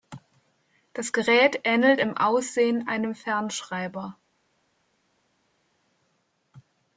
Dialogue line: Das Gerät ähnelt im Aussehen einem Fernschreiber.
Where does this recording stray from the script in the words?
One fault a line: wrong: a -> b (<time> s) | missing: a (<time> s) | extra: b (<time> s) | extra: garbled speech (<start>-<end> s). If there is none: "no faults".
no faults